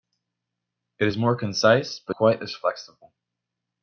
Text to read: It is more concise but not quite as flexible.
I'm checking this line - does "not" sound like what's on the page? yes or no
no